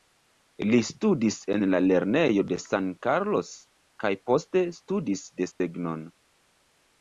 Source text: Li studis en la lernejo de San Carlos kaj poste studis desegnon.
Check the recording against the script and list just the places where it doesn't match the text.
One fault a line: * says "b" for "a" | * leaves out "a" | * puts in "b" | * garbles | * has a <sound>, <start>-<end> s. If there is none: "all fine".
* has a dropout, 5.5-5.6 s